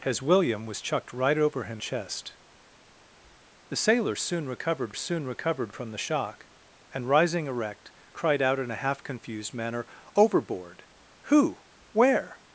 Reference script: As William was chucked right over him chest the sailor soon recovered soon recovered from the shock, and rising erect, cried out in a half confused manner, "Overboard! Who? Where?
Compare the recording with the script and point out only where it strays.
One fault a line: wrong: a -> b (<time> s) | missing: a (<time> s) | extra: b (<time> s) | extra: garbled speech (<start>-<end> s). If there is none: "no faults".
no faults